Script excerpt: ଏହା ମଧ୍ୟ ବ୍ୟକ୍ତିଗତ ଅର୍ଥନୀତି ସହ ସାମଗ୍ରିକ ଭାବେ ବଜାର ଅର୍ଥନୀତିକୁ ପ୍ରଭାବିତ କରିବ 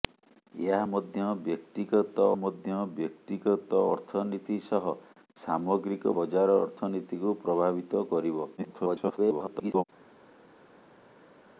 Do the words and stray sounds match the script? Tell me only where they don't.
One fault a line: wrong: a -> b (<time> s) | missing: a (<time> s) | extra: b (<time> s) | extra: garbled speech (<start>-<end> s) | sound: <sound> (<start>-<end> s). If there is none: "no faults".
extra: ମଧ୍ୟ ବ୍ୟକ୍ତିଗତ (2.4 s)
missing: ଭାବେ (6.1 s)
extra: garbled speech (8.6-9.8 s)